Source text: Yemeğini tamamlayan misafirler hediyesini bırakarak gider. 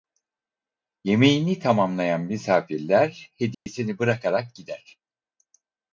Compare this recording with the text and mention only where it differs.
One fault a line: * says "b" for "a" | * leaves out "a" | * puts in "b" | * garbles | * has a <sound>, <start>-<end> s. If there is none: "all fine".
* has a dropout, 3.5-3.7 s